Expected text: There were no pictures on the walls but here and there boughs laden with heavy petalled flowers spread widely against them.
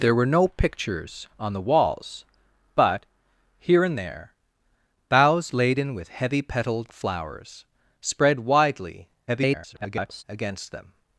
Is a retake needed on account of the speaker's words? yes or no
yes